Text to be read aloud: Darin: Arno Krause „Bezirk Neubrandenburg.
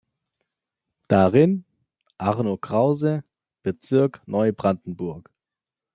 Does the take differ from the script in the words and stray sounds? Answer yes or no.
no